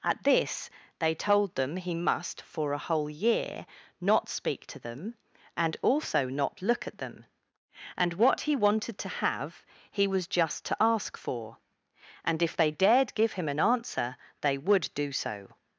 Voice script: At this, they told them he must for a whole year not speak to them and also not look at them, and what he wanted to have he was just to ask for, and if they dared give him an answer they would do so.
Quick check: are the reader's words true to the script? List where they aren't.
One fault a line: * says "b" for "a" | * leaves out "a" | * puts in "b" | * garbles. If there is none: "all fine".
all fine